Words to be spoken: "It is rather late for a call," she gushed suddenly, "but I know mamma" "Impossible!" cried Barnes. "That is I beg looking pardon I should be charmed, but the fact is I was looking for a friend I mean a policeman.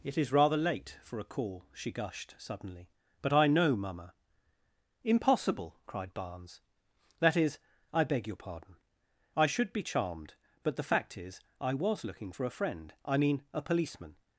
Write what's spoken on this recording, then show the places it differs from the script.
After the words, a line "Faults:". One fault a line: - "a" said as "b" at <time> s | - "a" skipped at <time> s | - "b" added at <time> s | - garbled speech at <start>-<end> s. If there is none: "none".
"It is rather late for a call," she gushed suddenly, "but I know mamma" "Impossible!" cried Barnes. "That is I beg your pardon I should be charmed, but the fact is I was looking for a friend I mean a policeman.
Faults:
- "looking" said as "your" at 8.2 s